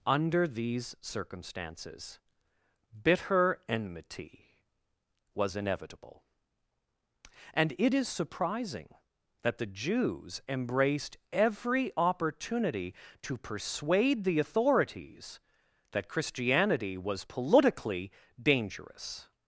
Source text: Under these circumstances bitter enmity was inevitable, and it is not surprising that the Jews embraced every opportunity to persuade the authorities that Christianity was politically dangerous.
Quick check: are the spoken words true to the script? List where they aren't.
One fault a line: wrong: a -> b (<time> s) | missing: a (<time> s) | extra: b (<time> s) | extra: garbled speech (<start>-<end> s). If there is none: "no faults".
missing: not (8.1 s)